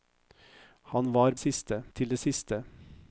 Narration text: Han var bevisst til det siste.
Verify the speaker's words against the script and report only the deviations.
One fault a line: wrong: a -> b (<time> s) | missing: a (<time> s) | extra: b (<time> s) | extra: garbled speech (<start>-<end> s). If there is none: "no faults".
wrong: bevisst -> siste (1.4 s)